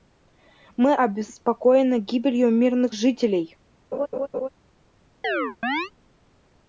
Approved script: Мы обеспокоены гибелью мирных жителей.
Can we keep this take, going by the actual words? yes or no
yes